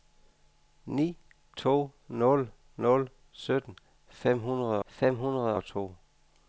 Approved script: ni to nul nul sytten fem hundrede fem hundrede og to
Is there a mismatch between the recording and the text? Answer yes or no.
no